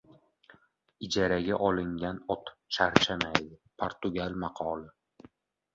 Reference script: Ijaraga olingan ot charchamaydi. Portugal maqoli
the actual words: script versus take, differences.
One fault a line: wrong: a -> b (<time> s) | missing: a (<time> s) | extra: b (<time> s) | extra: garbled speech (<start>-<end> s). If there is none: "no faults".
no faults